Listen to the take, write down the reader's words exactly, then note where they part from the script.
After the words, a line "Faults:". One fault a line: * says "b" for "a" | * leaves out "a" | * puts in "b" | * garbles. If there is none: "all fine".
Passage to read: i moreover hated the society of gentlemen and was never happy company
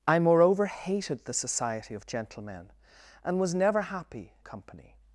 i moreover hated the society of gentlemen and was never happy company
Faults:
all fine